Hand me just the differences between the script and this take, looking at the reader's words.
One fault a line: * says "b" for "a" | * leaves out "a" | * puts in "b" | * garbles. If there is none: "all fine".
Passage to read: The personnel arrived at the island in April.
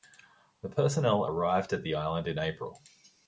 all fine